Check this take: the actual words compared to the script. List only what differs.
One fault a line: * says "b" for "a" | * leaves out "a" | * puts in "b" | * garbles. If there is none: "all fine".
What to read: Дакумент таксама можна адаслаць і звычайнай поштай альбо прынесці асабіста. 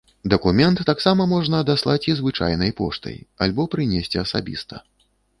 all fine